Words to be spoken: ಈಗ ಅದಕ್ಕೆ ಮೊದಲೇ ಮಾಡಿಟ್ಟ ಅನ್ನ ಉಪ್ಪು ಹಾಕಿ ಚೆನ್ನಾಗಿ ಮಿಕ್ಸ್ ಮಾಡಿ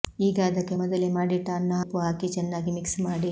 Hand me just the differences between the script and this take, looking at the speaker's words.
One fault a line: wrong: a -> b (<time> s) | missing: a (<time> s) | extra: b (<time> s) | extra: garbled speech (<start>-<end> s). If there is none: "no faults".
no faults